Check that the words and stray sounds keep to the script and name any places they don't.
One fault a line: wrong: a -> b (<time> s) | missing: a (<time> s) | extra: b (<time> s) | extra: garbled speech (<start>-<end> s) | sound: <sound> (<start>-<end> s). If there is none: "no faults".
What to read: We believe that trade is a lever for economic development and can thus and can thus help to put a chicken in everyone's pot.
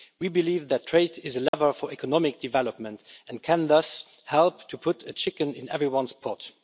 sound: dropout (1.5-1.5 s)
missing: and can thus (4.0 s)